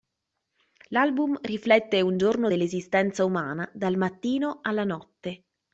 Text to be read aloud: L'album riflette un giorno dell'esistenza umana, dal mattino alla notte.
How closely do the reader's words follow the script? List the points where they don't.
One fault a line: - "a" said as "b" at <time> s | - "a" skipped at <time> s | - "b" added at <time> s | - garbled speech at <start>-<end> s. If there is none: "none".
none